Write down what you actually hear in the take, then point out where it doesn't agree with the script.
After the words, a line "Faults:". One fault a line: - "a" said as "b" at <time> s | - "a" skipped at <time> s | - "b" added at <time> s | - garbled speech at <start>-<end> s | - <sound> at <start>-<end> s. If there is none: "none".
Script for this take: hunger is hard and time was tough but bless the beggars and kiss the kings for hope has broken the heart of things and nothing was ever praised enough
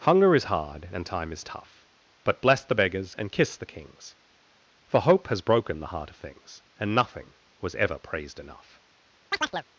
hunger is hard and time is tough but bless the beggars and kiss the kings for hope has broken the heart of things and nothing was ever praised enough
Faults:
- "was" said as "is" at 1.3 s
- chirp at 9.3-9.7 s